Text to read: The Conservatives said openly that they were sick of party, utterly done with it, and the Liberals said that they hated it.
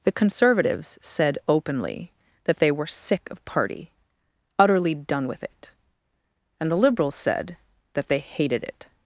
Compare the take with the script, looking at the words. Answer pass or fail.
pass